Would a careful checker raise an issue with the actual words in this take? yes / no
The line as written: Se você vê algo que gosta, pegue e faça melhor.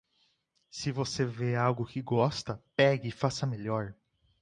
no